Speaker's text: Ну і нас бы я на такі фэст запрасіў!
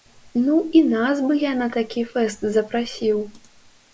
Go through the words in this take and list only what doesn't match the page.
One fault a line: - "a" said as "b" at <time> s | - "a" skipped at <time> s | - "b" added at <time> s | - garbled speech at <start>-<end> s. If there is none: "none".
none